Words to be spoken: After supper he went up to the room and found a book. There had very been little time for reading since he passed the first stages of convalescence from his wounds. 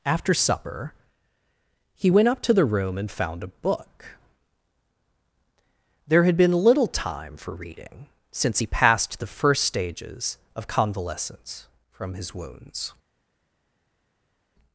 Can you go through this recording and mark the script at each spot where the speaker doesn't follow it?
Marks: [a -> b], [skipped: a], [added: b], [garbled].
After supper he went up to the room and found a book. There had [skipped: very] been little time for reading since he passed the first stages of convalescence from his wounds.